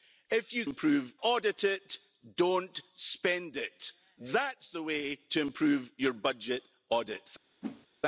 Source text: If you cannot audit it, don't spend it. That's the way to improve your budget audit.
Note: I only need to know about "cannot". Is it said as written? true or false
false